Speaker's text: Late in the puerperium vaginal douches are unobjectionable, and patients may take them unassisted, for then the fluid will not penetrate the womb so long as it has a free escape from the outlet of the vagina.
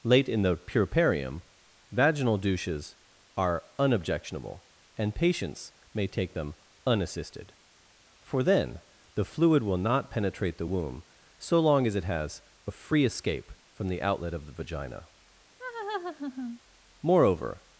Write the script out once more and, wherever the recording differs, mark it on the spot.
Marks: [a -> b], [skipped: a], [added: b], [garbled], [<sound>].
Late in the puerperium vaginal douches are unobjectionable, and patients may take them unassisted, for then the fluid will not penetrate the womb so long as it has a free escape from the outlet of the vagina. [laugh] [added: Moreover]